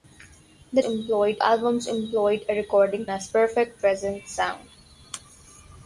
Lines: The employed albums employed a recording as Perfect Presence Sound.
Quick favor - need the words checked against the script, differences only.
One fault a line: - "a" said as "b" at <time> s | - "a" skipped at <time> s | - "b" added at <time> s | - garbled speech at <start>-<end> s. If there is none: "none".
none